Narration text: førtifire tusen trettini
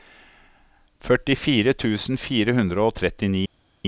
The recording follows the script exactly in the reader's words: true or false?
false